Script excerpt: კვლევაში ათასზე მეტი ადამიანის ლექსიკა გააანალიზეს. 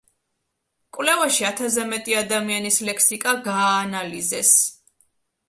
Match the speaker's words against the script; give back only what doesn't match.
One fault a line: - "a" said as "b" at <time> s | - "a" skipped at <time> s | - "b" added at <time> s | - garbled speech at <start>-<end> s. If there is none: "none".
none